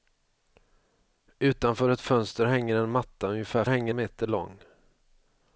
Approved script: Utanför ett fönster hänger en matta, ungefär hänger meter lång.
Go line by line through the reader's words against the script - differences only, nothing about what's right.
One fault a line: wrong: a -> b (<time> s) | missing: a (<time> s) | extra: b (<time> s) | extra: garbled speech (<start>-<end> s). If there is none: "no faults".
no faults